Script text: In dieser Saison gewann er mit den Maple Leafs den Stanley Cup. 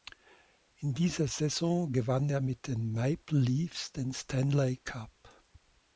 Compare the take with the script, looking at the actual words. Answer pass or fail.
pass